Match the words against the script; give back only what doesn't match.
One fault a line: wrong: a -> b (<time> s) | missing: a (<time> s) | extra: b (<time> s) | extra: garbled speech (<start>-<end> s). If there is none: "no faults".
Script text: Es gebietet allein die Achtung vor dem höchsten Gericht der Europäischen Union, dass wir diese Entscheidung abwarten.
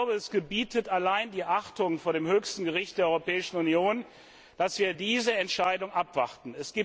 no faults